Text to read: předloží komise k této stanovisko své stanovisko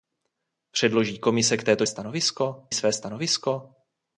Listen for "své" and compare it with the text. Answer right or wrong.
right